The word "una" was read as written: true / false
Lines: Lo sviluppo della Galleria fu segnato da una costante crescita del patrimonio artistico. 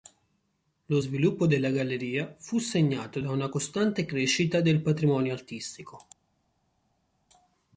true